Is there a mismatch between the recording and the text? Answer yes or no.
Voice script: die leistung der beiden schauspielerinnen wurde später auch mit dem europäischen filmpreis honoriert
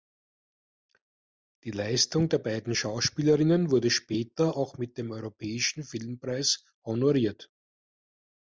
no